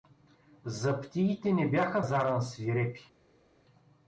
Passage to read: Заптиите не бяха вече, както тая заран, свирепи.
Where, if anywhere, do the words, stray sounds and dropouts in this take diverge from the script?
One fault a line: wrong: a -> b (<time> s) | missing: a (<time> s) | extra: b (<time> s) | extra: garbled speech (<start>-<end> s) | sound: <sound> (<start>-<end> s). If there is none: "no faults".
missing: вече както тая (2.0 s)